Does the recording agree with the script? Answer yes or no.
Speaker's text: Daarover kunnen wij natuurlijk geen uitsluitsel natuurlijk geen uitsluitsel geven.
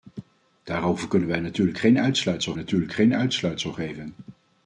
yes